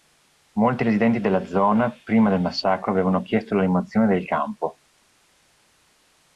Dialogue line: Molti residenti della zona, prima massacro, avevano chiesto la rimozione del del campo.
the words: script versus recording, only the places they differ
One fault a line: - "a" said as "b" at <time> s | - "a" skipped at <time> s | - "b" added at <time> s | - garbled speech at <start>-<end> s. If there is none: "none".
- "del" added at 2.3 s
- "del" skipped at 4.2 s